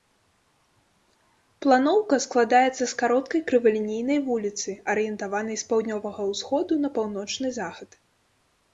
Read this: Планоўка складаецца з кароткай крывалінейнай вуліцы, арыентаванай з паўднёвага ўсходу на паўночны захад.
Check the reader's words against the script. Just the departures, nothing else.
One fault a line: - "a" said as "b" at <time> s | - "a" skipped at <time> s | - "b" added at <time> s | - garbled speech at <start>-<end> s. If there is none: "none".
none